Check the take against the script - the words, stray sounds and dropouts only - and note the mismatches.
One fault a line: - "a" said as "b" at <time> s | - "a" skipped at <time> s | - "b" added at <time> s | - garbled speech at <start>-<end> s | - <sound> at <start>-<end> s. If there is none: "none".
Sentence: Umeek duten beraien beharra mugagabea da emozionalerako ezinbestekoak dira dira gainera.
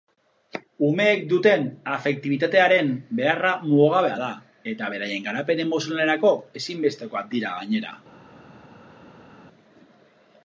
- "beraien" said as "afektibitatearen" at 2.0 s
- "eta beraien garapen" added at 4.7 s
- "dira" skipped at 7.6 s